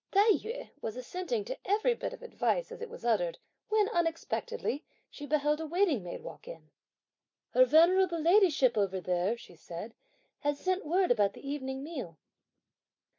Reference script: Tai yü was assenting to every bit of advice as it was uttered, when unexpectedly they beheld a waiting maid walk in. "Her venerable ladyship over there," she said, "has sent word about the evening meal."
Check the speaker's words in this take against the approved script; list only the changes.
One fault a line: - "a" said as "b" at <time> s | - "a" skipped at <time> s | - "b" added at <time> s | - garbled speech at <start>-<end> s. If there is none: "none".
- "they" said as "she" at 5.1 s